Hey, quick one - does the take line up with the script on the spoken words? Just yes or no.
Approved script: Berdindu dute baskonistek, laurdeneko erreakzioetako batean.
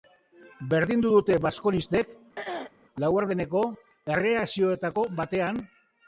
yes